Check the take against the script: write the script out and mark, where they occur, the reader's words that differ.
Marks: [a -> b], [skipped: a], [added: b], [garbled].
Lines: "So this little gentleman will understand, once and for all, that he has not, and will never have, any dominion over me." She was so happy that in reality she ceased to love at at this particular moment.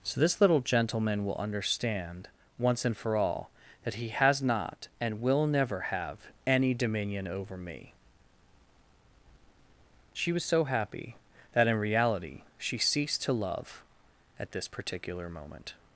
"So this little gentleman will understand, once and for all, that he has not, and will never have, any dominion over me." She was so happy that in reality she ceased to love at [skipped: at] this particular moment.